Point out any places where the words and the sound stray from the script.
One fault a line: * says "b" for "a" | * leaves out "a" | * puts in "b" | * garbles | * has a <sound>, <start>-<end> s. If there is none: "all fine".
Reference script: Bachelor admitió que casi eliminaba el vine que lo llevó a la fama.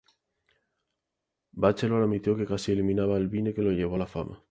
all fine